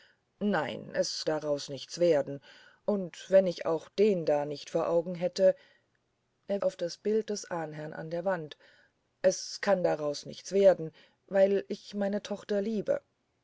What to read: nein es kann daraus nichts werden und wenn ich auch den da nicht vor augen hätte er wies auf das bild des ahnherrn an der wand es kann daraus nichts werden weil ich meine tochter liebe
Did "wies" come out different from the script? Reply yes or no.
yes